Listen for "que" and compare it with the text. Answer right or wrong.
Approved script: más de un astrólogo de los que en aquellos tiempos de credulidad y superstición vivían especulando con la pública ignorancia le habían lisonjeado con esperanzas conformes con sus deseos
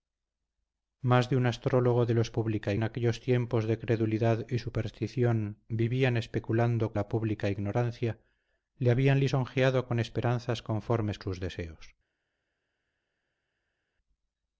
wrong